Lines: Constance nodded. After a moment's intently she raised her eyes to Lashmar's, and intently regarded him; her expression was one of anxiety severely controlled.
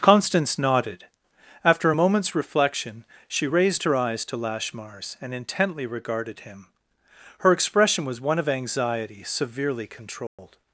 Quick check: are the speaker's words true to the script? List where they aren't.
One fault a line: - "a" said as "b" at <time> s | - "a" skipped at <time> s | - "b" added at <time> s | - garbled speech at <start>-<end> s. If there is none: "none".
- "intently" said as "reflection" at 2.4 s